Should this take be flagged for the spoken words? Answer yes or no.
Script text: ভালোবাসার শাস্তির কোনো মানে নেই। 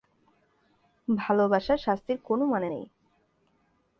no